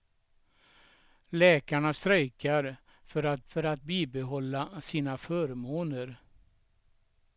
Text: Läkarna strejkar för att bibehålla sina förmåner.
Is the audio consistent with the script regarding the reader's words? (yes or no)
no